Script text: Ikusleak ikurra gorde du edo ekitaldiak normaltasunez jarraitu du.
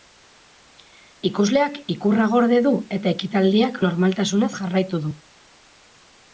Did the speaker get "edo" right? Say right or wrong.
wrong